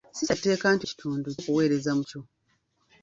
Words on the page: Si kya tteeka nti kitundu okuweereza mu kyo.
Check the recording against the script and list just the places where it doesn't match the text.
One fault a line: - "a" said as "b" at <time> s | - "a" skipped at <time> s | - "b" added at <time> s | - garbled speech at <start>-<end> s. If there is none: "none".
none